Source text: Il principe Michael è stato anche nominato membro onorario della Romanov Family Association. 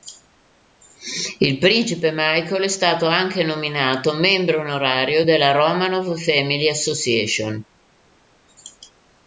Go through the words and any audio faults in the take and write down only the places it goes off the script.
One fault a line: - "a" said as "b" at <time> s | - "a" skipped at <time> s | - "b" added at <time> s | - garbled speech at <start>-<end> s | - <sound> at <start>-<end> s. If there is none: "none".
none